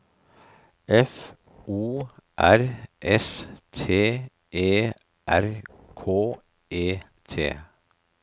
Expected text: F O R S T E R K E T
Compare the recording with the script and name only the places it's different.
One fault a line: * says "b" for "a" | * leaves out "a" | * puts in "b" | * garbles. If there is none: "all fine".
all fine